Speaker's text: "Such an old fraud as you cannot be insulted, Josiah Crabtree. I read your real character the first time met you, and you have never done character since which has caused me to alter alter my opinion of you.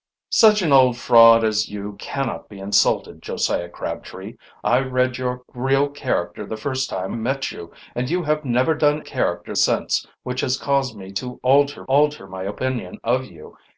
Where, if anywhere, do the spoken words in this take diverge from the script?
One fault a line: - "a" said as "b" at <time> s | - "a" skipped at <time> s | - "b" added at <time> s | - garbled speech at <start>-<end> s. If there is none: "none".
none